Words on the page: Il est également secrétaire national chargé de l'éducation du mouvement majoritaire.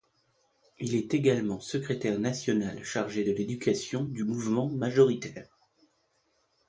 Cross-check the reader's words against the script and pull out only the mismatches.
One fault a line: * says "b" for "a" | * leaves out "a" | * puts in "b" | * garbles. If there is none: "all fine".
all fine